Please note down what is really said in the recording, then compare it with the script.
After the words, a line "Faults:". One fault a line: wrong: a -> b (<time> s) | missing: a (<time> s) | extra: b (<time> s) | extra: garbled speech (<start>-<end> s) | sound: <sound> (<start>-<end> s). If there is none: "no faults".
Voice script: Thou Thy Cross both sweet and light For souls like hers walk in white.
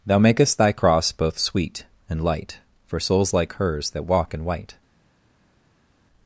Thou makest Thy Cross both sweet and light For souls like hers that walk in white.
Faults:
extra: makest (0.2 s)
extra: that (3.9 s)